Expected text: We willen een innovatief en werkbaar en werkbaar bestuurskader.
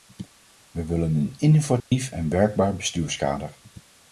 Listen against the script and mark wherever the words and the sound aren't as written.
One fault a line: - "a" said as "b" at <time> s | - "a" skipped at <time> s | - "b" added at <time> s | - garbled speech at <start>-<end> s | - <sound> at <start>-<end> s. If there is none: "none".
- dropout at 1.8-1.9 s
- "en werkbaar" skipped at 2.8 s